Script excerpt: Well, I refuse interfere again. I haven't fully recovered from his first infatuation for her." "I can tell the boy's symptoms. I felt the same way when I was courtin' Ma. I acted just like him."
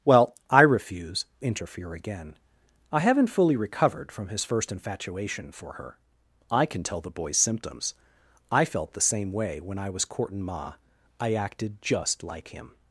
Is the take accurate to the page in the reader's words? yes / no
yes